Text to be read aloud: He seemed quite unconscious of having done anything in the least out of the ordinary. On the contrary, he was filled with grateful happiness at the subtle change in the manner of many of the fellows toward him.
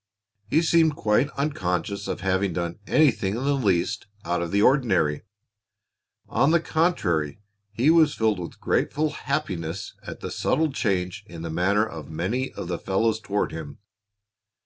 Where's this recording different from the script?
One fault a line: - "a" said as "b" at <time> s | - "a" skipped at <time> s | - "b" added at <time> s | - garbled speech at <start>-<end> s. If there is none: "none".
none